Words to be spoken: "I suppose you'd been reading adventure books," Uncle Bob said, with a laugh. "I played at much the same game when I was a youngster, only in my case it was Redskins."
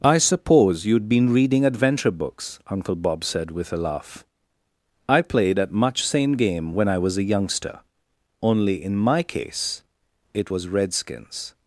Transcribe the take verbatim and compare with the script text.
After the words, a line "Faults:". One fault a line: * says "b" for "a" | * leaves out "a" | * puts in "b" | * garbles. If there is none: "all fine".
"I suppose you'd been reading adventure books," Uncle Bob said, with a laugh. "I played at much same game when I was a youngster, only in my case it was Redskins."
Faults:
* leaves out "the"